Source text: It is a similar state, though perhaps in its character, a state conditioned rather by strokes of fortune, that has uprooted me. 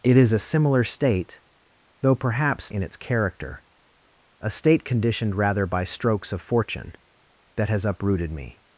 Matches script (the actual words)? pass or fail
pass